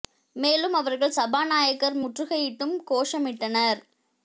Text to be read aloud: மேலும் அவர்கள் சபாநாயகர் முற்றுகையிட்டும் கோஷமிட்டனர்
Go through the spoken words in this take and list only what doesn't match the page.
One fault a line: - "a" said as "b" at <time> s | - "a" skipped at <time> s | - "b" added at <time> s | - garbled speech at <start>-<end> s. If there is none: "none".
none